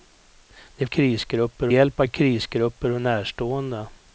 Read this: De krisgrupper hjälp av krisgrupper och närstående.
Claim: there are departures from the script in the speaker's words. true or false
false